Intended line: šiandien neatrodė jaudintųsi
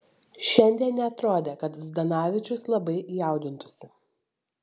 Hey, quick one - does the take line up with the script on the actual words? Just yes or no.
no